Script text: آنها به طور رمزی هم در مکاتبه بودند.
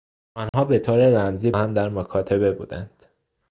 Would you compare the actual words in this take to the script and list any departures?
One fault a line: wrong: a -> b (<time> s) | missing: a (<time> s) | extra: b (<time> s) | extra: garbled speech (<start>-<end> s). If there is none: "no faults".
no faults